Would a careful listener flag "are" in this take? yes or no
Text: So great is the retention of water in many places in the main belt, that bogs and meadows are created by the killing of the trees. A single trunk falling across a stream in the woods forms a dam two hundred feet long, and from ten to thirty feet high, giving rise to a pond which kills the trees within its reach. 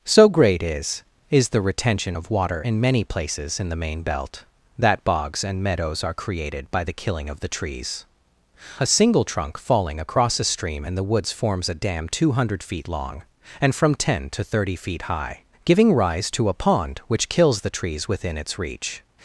no